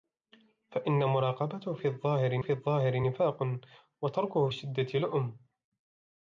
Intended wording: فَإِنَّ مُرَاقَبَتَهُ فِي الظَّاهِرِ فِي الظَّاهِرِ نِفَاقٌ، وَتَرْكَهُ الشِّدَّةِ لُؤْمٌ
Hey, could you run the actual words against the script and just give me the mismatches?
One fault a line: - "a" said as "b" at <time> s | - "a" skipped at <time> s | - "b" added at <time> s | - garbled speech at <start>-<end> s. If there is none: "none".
none